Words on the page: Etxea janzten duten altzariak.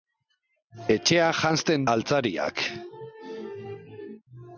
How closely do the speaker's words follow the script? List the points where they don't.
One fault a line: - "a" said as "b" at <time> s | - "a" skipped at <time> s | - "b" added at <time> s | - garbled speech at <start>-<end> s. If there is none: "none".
- "duten" skipped at 1.9 s